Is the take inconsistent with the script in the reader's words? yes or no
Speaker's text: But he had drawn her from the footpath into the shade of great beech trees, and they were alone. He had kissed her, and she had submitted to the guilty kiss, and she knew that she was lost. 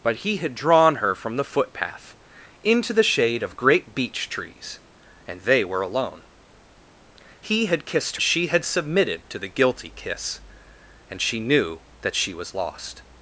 yes